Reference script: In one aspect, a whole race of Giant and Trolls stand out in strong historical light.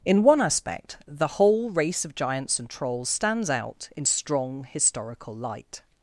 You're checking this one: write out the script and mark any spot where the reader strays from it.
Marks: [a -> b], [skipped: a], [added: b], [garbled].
In one aspect, [a -> the] whole race of [Giant -> Giants] and Trolls [stand -> stands] out in strong historical light.